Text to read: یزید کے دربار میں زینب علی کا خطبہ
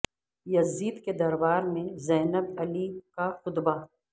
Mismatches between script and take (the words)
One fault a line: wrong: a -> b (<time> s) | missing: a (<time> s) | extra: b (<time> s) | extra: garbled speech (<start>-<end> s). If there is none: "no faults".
no faults